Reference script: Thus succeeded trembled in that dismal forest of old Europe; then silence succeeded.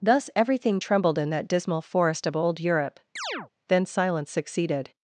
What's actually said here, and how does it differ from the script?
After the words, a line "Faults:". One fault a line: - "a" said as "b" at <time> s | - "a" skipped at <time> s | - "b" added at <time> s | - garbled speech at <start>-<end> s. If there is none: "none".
Thus everything trembled in that dismal forest of old Europe; then silence succeeded.
Faults:
- "succeeded" said as "everything" at 0.3 s